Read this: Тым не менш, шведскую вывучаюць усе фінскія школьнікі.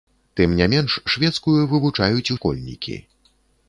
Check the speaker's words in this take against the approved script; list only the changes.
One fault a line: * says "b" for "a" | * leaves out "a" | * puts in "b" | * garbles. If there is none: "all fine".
* leaves out "усе фінскія"